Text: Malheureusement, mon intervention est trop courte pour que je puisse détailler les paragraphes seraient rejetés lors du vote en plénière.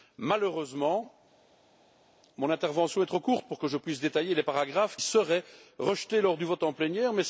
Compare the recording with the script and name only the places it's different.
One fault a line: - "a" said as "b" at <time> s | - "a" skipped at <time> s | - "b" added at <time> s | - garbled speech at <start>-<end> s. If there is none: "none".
none